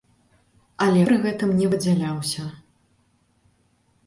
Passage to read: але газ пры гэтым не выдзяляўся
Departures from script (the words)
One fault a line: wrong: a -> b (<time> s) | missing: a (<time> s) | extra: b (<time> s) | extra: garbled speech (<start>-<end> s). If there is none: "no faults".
missing: газ (1.0 s)